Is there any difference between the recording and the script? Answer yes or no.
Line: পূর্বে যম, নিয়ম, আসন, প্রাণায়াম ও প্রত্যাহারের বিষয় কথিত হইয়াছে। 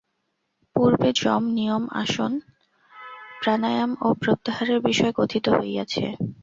no